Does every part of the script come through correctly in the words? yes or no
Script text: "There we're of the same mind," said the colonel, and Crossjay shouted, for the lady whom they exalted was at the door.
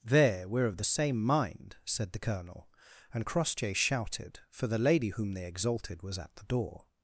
yes